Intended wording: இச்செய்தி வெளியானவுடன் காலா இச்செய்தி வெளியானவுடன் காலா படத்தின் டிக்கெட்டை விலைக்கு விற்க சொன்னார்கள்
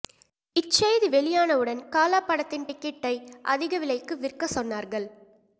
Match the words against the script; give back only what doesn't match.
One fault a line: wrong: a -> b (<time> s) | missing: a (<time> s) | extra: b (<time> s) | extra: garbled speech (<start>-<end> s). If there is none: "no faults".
missing: இச்செய்தி வெளியானவுடன் காலா (2.2 s)
extra: அதிக (3.4 s)